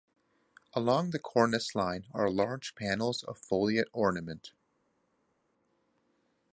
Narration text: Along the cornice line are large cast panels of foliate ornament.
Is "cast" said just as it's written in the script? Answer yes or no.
no